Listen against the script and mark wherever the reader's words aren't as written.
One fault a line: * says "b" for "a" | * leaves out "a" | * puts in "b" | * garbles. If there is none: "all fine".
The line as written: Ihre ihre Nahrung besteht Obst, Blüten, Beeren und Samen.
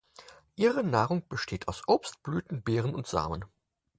* leaves out "ihre"
* puts in "aus"